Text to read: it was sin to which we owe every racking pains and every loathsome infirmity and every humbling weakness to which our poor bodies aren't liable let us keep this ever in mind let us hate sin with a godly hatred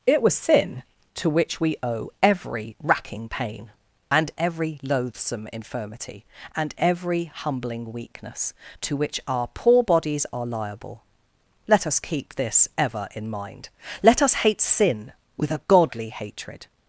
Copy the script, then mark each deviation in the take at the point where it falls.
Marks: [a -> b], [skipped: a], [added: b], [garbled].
it was sin to which we owe every racking [pains -> pain] and every loathsome infirmity and every humbling weakness to which our poor bodies [aren't -> are] liable let us keep this ever in mind let us hate sin with a godly hatred